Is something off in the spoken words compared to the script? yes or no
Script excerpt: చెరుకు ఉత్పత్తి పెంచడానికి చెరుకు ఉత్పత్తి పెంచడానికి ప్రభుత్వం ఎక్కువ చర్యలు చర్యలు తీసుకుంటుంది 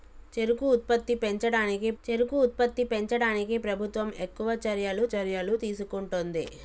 no